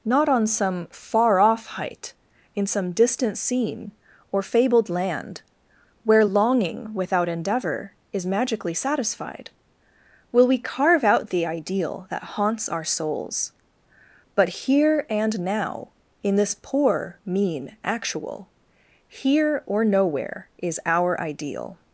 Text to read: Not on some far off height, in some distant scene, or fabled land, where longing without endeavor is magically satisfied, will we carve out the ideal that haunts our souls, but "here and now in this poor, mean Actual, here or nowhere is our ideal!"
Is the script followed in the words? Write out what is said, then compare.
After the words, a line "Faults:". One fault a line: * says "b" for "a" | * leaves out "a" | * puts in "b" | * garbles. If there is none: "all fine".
Not on some far off height, in some distant scene, or fabled land, where longing without endeavor is magically satisfied, will we carve out the ideal that haunts our souls, but "here and now in this poor, mean Actual, here or nowhere is our ideal!"
Faults:
all fine